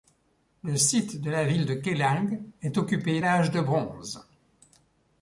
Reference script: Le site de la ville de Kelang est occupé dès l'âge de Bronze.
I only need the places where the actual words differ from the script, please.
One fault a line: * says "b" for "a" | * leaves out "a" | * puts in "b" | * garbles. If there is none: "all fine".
* leaves out "dès"